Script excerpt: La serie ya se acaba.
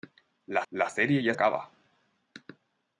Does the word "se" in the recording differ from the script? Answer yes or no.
yes